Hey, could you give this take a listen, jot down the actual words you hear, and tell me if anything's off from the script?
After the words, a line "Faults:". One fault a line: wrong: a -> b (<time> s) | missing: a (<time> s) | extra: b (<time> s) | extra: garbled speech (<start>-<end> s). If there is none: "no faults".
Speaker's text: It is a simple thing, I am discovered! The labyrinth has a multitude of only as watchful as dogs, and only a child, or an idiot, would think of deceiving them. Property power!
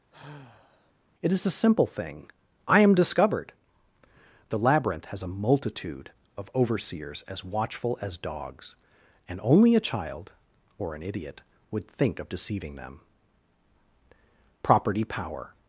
It is a simple thing, I am discovered! The labyrinth has a multitude of overseers as watchful as dogs, and only a child, or an idiot, would think of deceiving them. Property power!
Faults:
wrong: only -> overseers (6.5 s)